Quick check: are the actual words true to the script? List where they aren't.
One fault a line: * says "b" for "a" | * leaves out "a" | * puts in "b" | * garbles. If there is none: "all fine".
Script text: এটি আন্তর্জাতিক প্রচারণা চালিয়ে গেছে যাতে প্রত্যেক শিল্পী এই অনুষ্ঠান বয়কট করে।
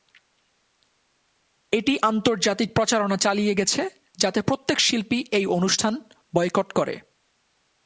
all fine